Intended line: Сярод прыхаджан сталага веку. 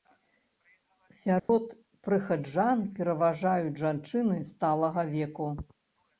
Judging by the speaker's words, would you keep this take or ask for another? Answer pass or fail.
fail